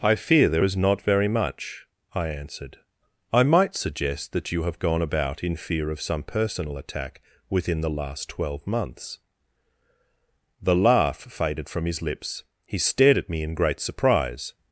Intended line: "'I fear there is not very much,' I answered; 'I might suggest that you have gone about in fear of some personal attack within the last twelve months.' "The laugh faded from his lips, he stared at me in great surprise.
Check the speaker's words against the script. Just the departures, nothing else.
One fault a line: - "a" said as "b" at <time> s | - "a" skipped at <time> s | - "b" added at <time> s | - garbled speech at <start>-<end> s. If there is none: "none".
none